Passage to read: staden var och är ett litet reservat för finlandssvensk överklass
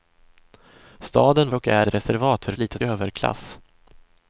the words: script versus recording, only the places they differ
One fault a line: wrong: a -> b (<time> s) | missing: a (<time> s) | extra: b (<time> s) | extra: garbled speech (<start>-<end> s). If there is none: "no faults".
missing: var (1.5 s)
missing: ett litet (1.9 s)
wrong: finlandssvensk -> litet (2.6 s)